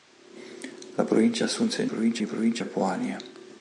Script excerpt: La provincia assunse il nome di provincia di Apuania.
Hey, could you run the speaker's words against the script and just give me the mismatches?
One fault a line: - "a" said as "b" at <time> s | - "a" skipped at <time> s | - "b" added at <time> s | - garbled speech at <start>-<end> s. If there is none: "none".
- "nome" said as "provincia" at 1.8 s
- "di" skipped at 2.6 s